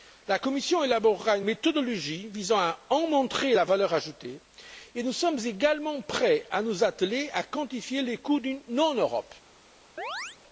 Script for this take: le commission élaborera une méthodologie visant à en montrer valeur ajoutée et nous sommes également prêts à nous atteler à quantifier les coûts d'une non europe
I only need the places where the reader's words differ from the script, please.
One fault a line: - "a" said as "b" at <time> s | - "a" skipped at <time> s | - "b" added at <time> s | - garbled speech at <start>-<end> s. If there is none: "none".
- "le" said as "la" at 0.3 s
- "la" added at 3.5 s